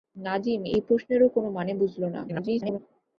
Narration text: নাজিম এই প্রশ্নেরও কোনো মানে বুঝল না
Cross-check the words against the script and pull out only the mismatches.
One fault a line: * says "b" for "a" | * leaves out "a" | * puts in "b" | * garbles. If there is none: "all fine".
* garbles